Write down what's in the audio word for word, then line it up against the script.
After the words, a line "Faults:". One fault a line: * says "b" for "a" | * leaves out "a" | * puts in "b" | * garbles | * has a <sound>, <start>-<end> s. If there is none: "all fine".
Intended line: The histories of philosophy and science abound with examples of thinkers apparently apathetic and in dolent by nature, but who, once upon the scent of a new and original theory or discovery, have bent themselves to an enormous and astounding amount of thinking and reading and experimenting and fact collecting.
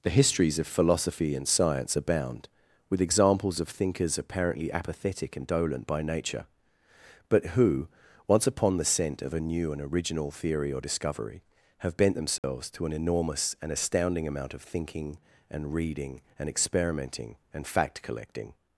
The histories of philosophy and science abound with examples of thinkers apparently apathetic and dolent by nature, but who, once upon the scent of a new and original theory or discovery, have bent themselves to an enormous and astounding amount of thinking and reading and experimenting and fact collecting.
Faults:
* leaves out "in"
* has a dropout, 12.4-12.4 s